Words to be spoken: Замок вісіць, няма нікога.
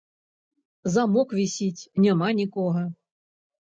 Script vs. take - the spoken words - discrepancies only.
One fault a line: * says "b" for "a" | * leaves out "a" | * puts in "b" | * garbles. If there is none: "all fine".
all fine